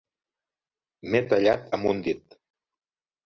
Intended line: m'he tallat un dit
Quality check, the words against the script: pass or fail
fail